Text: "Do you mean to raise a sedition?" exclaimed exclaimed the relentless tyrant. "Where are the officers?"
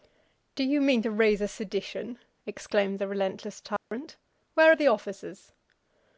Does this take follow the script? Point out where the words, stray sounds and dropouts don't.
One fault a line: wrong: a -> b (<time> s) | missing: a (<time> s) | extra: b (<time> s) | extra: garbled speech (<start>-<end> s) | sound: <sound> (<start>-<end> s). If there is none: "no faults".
missing: exclaimed (3.0 s)
sound: dropout (3.8-3.9 s)